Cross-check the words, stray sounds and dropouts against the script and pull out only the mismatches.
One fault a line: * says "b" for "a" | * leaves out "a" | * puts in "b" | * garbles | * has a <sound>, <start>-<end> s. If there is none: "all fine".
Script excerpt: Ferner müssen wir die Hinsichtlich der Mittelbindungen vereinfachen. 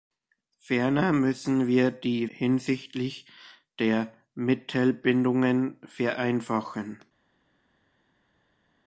all fine